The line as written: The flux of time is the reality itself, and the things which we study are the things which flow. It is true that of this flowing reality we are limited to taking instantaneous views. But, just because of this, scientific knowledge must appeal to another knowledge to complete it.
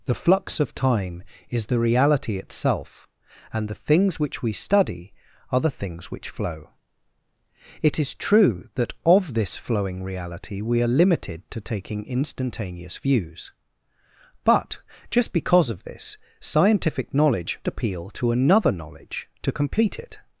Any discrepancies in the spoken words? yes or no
yes